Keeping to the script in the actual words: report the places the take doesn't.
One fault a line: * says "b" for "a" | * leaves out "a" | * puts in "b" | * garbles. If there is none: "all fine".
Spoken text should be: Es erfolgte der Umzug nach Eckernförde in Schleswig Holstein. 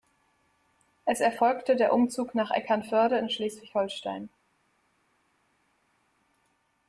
all fine